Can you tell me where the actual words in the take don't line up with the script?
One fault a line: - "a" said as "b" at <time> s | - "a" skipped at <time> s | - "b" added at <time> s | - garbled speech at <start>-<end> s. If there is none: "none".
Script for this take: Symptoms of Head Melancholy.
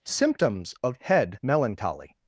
none